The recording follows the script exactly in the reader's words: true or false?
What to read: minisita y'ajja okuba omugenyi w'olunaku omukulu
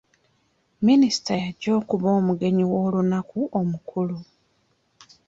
true